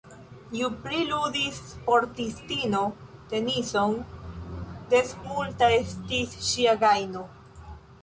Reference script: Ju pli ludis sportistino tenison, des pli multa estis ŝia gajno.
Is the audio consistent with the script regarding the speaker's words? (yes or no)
no